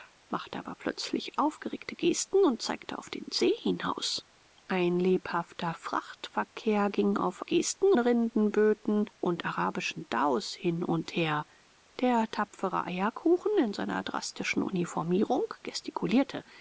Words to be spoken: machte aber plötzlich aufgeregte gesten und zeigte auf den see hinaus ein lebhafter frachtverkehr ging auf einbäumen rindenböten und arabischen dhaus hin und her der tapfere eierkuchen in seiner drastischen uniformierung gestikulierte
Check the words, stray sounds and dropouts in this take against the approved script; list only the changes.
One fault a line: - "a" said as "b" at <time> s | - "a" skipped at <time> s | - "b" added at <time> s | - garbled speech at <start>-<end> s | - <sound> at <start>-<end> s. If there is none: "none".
- "einbäumen" said as "gesten" at 7.4 s